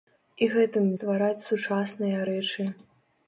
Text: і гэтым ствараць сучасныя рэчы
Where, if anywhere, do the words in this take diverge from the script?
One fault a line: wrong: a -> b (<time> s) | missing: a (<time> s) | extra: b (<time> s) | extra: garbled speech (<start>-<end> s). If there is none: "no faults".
no faults